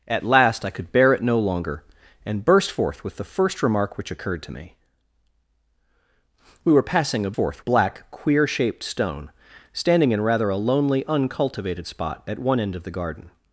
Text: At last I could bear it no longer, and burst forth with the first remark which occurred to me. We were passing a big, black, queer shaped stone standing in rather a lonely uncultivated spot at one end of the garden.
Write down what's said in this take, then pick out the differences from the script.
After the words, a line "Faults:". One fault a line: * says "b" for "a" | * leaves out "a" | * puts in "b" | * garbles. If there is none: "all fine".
At last I could bear it no longer, and burst forth with the first remark which occurred to me. We were passing a forth, black, queer shaped stone standing in rather a lonely uncultivated spot at one end of the garden.
Faults:
* says "forth" for "big"